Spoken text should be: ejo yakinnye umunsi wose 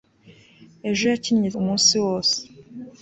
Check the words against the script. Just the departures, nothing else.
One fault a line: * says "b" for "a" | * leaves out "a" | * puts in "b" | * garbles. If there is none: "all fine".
all fine